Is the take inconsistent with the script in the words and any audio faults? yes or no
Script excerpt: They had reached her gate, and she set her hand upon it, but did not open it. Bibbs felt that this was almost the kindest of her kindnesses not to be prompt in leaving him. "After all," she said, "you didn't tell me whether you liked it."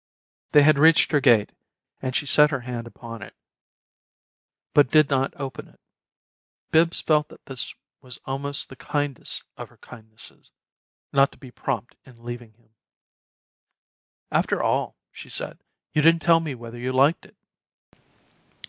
no